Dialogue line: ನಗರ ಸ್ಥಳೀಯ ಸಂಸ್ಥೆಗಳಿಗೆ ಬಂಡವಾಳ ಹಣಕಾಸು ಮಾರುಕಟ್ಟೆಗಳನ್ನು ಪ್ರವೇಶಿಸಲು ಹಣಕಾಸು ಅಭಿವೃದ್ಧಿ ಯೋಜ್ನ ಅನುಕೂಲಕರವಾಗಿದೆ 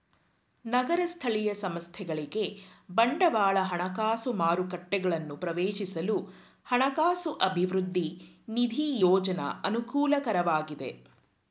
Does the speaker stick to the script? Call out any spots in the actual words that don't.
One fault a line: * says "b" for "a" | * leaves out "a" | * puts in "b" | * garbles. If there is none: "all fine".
* puts in "ನಿಧಿ"